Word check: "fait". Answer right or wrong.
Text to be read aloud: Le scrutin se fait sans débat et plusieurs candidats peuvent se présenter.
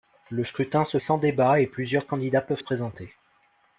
wrong